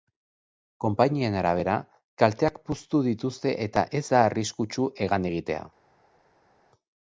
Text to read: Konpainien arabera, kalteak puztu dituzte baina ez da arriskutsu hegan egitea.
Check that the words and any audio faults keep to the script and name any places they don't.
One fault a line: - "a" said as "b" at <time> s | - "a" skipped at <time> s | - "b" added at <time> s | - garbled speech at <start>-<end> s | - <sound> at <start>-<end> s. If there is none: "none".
- "baina" said as "eta" at 3.7 s